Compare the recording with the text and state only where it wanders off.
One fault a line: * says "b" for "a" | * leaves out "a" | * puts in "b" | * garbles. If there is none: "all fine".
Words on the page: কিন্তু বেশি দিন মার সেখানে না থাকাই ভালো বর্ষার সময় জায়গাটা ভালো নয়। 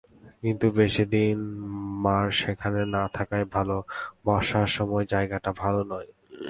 all fine